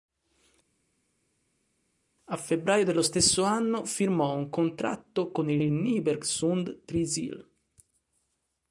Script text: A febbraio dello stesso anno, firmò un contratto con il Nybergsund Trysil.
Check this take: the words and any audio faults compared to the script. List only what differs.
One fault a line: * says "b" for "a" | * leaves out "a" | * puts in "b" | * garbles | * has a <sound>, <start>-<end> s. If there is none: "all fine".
* puts in "il"